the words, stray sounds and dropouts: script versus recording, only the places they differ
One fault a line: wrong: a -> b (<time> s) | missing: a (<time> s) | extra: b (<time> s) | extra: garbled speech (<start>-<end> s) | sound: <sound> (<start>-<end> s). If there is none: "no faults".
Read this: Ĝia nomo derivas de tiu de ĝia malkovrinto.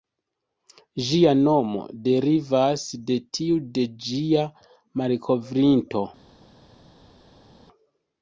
no faults